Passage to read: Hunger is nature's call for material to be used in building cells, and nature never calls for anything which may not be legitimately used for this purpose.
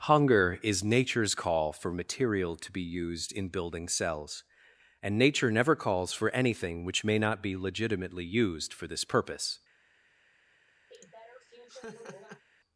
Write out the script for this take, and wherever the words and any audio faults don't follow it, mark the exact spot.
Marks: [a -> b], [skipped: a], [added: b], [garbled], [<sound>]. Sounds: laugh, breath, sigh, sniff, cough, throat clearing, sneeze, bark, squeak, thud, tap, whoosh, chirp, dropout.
Hunger is nature's call for material to be used in building cells, and nature never calls for anything which may not be legitimately used for this purpose. [laugh]